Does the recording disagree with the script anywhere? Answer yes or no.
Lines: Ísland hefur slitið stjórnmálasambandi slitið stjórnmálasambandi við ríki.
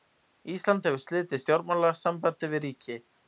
yes